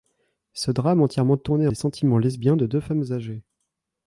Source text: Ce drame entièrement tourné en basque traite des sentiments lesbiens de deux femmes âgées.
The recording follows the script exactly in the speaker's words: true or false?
false